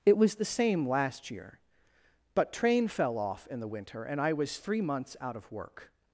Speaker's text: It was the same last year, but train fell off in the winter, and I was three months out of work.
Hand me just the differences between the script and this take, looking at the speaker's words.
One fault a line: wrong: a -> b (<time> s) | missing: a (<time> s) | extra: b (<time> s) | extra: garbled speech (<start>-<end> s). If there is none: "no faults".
no faults